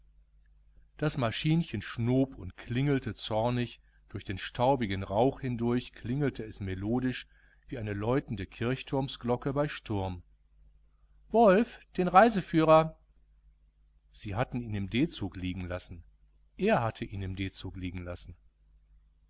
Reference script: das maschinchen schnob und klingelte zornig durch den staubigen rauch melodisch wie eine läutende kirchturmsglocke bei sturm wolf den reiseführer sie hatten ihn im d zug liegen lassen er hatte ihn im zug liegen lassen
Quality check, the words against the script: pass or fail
fail